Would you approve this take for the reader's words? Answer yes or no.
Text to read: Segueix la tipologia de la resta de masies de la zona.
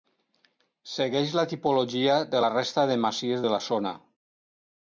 yes